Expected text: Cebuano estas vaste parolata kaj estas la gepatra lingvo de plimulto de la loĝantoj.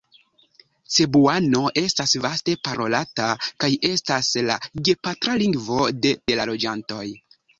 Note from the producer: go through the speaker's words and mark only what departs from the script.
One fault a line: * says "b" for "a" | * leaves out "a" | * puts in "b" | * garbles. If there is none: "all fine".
* leaves out "plimulto"